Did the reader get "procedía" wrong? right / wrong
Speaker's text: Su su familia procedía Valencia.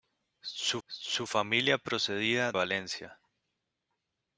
right